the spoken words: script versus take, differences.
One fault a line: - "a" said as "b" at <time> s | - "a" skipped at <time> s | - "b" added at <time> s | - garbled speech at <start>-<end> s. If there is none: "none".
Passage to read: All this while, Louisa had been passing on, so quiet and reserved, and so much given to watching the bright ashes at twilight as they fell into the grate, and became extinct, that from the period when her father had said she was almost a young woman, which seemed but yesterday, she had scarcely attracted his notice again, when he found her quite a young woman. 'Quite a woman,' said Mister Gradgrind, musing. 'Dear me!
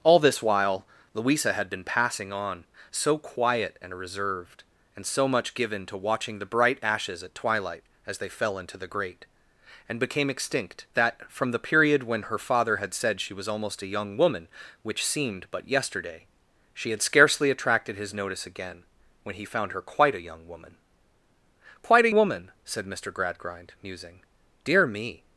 none